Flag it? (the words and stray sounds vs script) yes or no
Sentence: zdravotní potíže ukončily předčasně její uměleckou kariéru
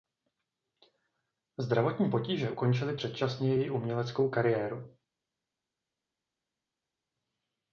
no